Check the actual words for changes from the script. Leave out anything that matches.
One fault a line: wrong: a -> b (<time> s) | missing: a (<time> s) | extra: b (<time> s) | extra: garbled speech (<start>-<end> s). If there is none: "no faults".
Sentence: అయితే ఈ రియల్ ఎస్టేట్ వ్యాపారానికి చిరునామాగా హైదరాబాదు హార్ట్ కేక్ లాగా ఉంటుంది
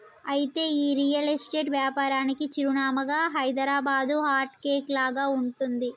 no faults